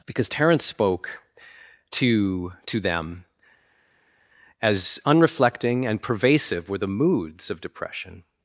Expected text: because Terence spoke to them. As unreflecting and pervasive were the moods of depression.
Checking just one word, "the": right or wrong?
right